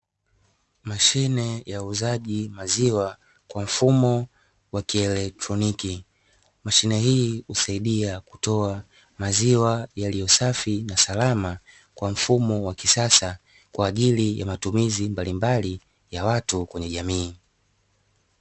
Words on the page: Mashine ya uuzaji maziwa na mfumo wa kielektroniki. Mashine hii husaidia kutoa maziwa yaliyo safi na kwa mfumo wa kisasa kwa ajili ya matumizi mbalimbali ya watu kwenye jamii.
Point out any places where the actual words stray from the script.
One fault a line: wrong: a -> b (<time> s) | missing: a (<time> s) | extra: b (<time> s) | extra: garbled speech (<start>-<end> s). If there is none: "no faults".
wrong: na -> kwa (3.5 s)
extra: salama (11.0 s)